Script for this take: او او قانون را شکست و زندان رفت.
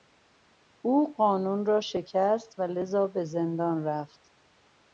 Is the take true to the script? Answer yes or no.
no